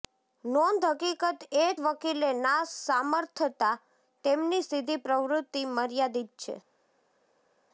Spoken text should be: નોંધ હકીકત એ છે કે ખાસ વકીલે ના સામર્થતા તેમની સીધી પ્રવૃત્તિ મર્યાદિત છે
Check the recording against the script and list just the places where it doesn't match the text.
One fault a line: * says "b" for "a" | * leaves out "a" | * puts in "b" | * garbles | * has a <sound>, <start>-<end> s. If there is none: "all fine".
* leaves out "છે કે ખાસ"